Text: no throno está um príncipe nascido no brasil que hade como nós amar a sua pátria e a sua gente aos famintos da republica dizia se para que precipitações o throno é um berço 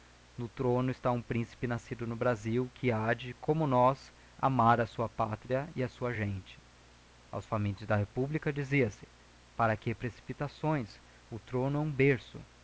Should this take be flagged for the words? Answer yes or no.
no